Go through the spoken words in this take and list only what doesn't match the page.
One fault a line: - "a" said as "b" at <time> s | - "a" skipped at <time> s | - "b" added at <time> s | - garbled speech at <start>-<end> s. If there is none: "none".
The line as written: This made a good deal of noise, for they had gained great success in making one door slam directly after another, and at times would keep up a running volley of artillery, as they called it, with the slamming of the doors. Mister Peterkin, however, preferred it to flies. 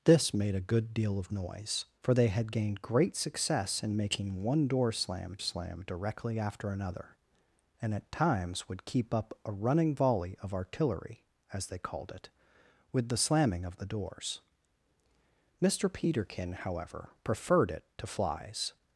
- "slam" added at 5.4 s